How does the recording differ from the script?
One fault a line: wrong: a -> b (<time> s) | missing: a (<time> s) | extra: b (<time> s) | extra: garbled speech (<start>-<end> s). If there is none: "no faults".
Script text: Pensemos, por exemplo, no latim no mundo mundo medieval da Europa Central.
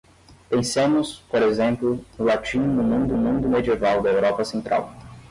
no faults